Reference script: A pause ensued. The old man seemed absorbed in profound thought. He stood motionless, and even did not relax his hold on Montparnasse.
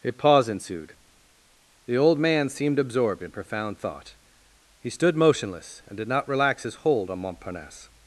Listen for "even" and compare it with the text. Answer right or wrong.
wrong